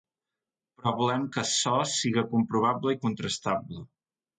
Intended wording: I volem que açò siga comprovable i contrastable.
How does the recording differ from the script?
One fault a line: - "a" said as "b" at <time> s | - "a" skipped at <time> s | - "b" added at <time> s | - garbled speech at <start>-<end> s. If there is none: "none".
- "I" said as "Però" at 0.8 s